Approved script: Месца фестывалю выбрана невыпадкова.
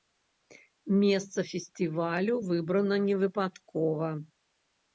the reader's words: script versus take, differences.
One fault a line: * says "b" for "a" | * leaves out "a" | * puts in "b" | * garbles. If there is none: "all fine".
all fine